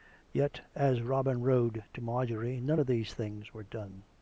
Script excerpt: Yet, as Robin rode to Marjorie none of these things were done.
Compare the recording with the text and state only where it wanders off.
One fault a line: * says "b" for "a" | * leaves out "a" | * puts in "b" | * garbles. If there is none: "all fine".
all fine